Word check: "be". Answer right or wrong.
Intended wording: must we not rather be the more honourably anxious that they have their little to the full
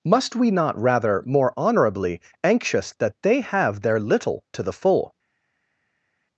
wrong